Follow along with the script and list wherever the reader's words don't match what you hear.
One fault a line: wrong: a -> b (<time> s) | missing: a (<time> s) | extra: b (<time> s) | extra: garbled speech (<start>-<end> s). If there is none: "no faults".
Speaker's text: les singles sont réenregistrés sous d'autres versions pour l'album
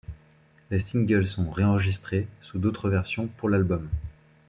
no faults